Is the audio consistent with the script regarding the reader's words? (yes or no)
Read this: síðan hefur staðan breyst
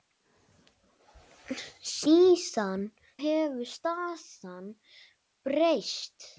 yes